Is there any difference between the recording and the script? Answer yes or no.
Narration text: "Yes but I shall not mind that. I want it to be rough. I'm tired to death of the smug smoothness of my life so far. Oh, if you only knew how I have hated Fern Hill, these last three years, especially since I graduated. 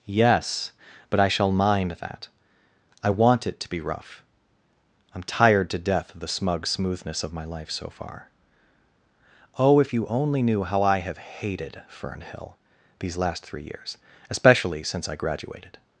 yes